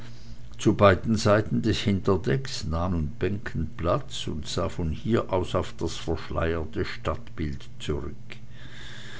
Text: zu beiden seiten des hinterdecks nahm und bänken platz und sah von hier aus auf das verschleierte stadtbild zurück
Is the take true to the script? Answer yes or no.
yes